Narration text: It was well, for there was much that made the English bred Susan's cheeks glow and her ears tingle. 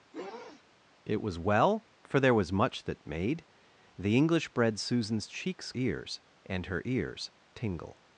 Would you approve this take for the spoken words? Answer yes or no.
no